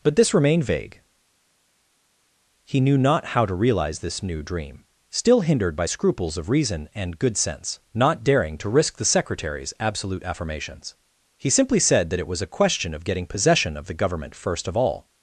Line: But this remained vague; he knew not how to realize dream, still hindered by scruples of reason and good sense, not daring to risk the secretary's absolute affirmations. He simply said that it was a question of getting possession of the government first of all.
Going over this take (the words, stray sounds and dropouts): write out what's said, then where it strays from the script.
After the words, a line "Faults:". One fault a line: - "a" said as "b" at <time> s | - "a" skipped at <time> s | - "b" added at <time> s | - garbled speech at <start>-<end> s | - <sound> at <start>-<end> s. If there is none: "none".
But this remained vague; he knew not how to realize this new dream, still hindered by scruples of reason and good sense, not daring to risk the secretary's absolute affirmations. He simply said that it was a question of getting possession of the government first of all.
Faults:
- "this new" added at 4.0 s